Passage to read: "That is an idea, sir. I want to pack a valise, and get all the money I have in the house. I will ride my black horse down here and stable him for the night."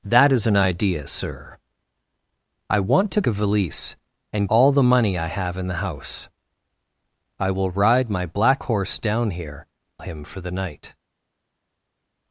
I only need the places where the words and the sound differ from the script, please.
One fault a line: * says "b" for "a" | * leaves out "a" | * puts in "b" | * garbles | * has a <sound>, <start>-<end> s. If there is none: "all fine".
* leaves out "pack"
* leaves out "get"
* leaves out "and stable"